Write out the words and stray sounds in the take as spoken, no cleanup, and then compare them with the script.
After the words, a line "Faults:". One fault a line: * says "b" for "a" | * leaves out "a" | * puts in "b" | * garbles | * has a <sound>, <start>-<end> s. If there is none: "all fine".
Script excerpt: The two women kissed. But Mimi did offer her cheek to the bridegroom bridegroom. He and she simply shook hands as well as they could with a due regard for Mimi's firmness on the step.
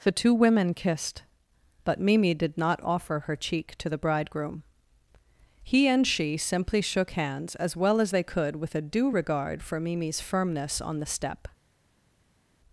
The two women kissed. But Mimi did not offer her cheek to the bridegroom. He and she simply shook hands as well as they could with a due regard for Mimi's firmness on the step.
Faults:
* puts in "not"
* leaves out "bridegroom"